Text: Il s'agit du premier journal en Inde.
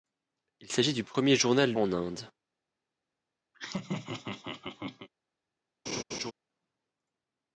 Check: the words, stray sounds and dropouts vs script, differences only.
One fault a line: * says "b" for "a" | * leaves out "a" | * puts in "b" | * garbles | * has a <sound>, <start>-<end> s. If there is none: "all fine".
* has a laugh, 3.5-5.1 s
* has a laugh, 5.9-6.3 s